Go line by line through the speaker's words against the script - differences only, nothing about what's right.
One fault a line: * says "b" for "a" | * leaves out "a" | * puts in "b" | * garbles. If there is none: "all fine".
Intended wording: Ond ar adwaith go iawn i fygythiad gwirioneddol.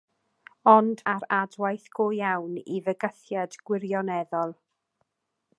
all fine